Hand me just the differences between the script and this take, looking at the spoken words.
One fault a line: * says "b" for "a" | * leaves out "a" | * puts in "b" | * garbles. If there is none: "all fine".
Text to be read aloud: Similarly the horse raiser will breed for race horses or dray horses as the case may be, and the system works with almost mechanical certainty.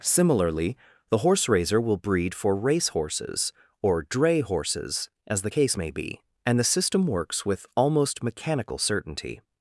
all fine